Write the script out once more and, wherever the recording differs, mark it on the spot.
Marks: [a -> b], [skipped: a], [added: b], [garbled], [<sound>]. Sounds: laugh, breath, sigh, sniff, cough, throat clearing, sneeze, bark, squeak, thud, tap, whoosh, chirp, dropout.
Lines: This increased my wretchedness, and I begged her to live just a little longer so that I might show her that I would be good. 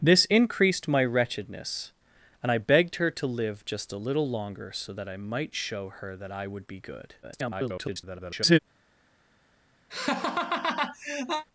This increased my wretchedness, and I begged her to live just a little longer so that I might show her that I would be good. [garbled] [laugh]